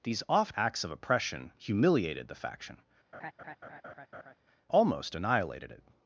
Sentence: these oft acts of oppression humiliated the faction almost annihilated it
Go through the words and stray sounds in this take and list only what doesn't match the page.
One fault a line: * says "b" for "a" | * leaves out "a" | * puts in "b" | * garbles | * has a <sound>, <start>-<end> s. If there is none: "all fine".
* has a laugh, 3.1-4.4 s